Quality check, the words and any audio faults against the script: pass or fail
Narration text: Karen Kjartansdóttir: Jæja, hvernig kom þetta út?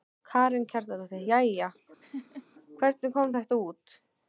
fail